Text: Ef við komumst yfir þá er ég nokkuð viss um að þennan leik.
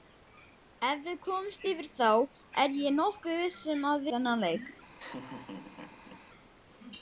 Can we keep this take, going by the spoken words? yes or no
yes